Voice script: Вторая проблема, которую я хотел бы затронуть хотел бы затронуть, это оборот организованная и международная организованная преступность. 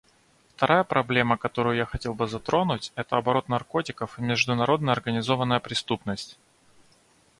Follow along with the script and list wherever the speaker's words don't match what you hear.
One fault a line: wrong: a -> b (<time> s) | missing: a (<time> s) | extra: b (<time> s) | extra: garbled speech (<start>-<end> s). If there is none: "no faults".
missing: хотел бы затронуть (2.9 s)
wrong: организованная -> наркотиков (3.5 s)